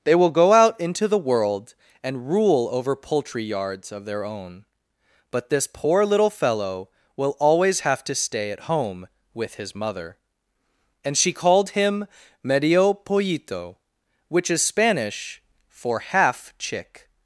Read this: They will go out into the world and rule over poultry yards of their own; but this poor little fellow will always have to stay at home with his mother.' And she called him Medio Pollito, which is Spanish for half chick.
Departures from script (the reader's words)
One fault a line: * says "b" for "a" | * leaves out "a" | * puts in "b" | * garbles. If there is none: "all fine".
all fine